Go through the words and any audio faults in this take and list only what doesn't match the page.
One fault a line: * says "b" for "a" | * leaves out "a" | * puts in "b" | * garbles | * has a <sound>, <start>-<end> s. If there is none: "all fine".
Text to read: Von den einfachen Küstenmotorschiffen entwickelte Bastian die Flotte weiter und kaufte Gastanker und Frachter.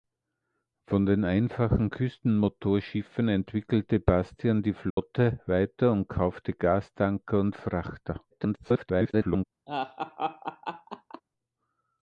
* has a dropout, 4.9-5.0 s
* garbles
* has a laugh, 9.7-11.2 s